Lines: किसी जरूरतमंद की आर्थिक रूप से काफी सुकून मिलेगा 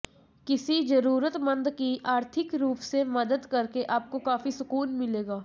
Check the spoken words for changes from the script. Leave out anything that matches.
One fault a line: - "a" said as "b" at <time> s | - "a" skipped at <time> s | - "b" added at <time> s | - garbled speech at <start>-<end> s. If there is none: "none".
- "मदद करके आपको" added at 3.1 s